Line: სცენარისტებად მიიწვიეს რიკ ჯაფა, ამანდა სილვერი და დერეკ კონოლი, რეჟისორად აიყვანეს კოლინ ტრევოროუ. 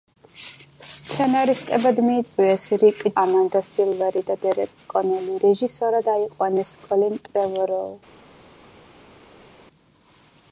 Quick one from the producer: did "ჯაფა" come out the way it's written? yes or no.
no